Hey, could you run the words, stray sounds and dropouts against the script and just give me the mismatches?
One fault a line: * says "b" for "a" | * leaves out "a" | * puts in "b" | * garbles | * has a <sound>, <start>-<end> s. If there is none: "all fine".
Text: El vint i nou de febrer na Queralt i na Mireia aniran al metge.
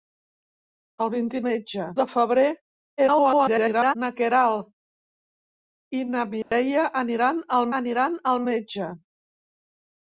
* says "metge" for "nou"
* garbles
* has a dropout, 6.4-6.5 s
* puts in "aniran al"